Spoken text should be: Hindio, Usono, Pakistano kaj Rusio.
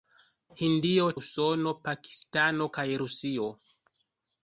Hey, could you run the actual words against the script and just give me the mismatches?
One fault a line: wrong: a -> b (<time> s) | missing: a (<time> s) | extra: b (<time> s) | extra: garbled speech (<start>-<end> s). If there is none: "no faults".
no faults